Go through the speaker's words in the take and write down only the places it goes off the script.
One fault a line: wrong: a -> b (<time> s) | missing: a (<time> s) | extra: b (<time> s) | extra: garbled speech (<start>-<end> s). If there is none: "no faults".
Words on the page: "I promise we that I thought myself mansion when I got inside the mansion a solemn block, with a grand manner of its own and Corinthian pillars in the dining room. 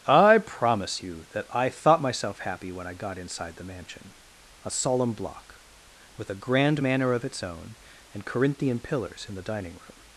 wrong: we -> you (1.0 s)
wrong: mansion -> happy (2.4 s)